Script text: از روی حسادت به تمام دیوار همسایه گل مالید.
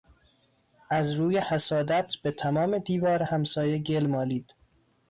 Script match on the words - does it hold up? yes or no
yes